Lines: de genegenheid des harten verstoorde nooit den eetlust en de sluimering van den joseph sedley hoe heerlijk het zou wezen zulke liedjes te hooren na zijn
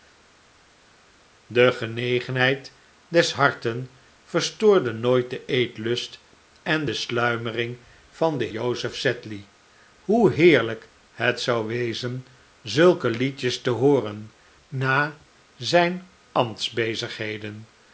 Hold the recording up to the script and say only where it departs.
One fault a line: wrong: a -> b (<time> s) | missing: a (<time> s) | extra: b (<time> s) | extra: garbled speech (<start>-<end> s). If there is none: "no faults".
no faults